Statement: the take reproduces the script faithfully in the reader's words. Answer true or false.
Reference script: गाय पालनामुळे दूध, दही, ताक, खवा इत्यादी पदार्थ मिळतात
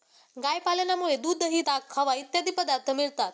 true